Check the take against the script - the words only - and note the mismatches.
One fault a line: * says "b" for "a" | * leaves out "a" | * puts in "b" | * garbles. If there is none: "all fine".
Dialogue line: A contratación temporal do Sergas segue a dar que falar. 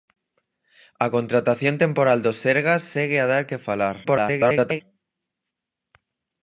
* garbles